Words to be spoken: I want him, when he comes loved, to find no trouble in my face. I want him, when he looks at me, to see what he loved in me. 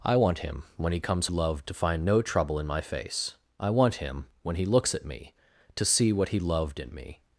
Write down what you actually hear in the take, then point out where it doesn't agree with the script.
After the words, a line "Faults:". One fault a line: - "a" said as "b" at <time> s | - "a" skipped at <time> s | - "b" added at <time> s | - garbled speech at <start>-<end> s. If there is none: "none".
I want him, when he comes loved, to find no trouble in my face. I want him, when he looks at me, to see what he loved in me.
Faults:
none